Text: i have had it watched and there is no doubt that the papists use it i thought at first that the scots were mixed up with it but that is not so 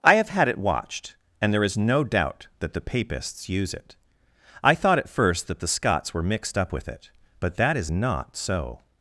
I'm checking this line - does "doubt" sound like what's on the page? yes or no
yes